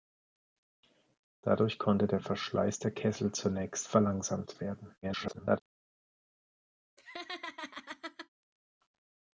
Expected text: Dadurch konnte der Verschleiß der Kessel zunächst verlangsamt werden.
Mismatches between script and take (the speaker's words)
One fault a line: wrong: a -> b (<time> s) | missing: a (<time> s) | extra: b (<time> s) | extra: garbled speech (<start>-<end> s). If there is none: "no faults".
extra: garbled speech (5.0-5.6 s)